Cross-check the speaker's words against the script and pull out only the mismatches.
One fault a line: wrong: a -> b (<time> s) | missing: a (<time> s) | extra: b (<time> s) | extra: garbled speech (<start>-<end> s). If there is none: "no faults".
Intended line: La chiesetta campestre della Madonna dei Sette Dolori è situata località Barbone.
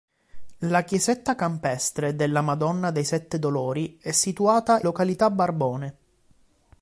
no faults